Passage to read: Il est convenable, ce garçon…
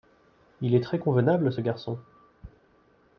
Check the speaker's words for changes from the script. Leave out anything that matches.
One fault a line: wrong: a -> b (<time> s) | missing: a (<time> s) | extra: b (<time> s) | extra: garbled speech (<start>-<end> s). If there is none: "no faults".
extra: très (0.8 s)